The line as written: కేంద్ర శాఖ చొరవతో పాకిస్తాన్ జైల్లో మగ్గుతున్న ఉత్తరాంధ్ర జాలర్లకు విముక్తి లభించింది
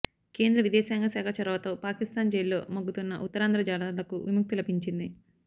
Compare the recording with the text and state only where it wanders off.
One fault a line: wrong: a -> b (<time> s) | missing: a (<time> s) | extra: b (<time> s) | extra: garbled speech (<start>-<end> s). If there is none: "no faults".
extra: విదేశాంగ (0.6 s)